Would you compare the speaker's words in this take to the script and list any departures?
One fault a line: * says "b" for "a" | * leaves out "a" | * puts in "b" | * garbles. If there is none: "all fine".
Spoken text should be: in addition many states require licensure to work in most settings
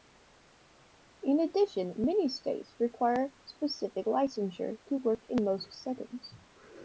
* puts in "specific"